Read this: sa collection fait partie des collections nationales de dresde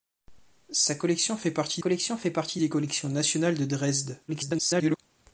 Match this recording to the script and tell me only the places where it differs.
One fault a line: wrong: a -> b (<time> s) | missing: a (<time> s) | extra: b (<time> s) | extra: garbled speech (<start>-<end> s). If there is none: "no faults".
extra: collection fait partie (1.8 s)
extra: garbled speech (4.3-5.0 s)